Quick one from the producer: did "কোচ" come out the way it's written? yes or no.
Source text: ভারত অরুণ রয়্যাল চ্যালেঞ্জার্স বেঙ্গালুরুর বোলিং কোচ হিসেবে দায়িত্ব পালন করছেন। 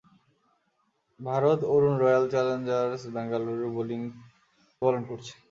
no